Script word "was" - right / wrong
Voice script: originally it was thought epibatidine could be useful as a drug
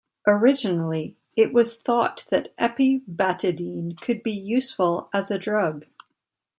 right